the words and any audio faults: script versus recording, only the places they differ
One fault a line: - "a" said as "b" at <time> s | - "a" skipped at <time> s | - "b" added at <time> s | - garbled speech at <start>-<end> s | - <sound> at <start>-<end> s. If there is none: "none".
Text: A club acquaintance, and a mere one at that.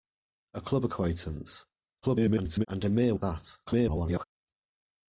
- garbled speech at 2.0-2.7 s
- "one" skipped at 3.1 s
- garbled speech at 3.7-4.2 s